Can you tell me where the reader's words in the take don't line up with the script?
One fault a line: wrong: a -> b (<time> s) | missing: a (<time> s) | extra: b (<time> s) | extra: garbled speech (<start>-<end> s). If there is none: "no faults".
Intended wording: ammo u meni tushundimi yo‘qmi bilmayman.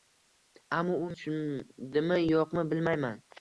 missing: meni (1.1 s)